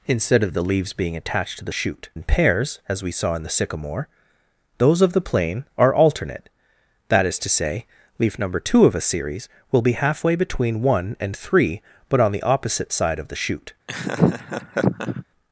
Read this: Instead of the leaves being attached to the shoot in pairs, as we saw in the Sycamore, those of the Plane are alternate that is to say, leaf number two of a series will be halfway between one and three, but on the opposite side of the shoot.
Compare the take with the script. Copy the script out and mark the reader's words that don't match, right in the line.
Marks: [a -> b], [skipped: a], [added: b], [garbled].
Instead of the leaves being attached to the shoot in pairs, as we saw in the Sycamore, those of the Plane are alternate that is to say, leaf number two of a series will be halfway between one and three, but on the opposite side of the shoot.